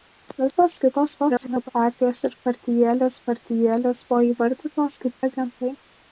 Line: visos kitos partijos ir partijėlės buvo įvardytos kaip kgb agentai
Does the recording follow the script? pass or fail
fail